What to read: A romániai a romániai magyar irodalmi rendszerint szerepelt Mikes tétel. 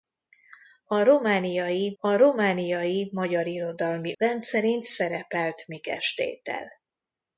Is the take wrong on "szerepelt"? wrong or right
right